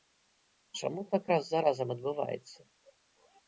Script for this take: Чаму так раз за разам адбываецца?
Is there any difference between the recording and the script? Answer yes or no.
no